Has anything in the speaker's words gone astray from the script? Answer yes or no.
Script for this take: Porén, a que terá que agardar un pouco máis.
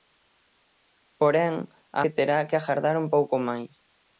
no